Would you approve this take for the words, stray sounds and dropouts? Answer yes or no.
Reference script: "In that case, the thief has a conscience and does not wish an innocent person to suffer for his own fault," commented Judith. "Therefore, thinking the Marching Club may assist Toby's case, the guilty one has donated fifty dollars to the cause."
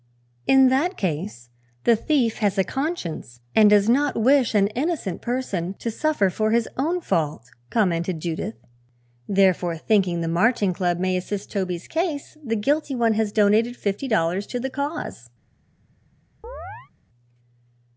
no